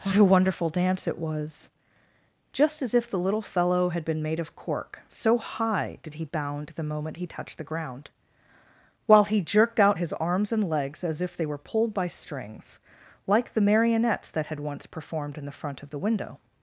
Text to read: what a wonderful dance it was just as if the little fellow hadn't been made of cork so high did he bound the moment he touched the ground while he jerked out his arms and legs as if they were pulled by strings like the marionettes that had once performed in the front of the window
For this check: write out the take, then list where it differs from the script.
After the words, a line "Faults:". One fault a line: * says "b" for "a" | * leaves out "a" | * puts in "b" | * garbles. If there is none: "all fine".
what a wonderful dance it was just as if the little fellow had been made of cork so high did he bound the moment he touched the ground while he jerked out his arms and legs as if they were pulled by strings like the marionettes that had once performed in the front of the window
Faults:
* says "had" for "hadn't"